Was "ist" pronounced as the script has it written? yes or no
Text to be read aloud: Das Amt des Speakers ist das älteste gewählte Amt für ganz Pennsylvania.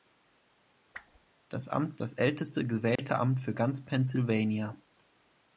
no